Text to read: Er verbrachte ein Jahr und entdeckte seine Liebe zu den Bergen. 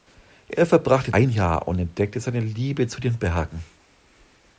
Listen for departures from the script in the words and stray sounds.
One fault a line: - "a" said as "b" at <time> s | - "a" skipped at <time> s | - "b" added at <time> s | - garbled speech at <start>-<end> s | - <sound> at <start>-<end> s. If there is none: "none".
none